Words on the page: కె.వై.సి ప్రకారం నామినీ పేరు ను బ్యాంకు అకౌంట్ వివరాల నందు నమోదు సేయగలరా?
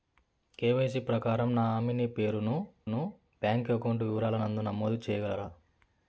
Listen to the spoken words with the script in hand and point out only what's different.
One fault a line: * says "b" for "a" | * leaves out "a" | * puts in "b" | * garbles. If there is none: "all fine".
* puts in "ను"